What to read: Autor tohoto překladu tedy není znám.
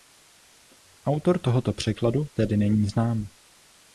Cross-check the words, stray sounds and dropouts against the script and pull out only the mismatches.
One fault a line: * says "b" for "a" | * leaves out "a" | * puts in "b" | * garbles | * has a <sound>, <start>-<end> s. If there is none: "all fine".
all fine